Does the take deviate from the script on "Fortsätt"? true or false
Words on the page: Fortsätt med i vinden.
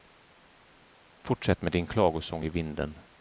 false